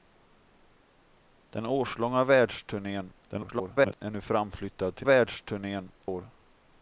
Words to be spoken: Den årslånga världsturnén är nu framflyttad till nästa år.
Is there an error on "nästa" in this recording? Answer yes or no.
yes